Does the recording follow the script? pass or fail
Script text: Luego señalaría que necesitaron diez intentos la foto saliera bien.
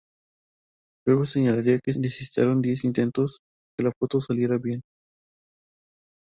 pass